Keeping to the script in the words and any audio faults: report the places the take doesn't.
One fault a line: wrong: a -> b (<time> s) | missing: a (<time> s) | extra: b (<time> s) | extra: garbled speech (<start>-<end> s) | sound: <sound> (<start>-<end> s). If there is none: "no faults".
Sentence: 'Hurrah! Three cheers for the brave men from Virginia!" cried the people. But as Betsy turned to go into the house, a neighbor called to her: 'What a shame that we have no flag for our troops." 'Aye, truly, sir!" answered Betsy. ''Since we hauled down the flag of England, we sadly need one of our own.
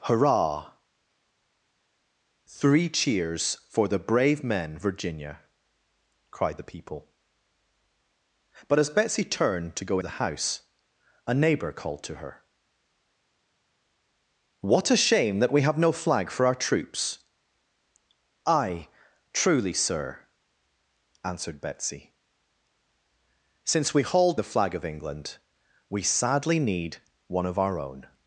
missing: from (4.8 s)
missing: into (10.0 s)
missing: down (24.4 s)